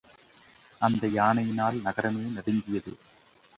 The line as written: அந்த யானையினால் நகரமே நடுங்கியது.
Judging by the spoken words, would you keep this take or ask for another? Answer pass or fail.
pass